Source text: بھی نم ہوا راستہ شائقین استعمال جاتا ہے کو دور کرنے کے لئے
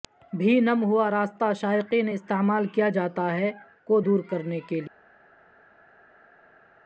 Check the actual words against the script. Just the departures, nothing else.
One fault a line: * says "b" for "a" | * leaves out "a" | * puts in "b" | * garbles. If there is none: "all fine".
* puts in "کیا"